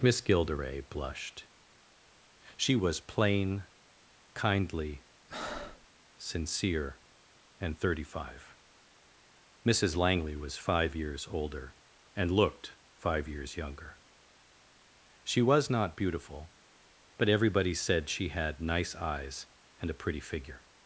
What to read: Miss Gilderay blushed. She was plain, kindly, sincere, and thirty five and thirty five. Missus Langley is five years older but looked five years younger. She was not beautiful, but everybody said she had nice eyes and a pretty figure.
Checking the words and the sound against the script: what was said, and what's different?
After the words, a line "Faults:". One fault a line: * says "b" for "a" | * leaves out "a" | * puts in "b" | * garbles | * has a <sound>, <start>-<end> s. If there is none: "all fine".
Miss Gilderay blushed. She was plain, kindly, sincere, and thirty five. Missus Langley was five years older and looked five years younger. She was not beautiful, but everybody said she had nice eyes and a pretty figure.
Faults:
* has a breath, 5.3-5.9 s
* leaves out "and thirty five"
* says "was" for "is"
* says "and" for "but"